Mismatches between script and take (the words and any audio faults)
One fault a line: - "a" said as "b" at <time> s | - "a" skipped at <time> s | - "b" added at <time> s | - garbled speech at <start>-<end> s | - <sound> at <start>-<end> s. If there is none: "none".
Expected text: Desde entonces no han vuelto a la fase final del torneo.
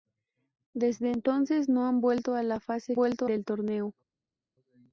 - "final" said as "vuelto" at 2.9 s